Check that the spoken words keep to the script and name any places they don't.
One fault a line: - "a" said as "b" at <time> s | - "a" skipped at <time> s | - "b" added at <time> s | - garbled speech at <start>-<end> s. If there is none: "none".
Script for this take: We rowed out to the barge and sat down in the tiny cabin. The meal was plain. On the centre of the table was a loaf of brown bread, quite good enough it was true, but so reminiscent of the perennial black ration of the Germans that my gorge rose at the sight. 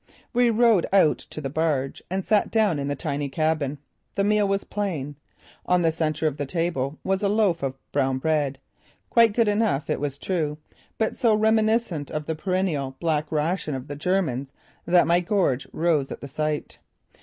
none